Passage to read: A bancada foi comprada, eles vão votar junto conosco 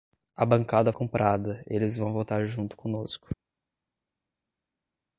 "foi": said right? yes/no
no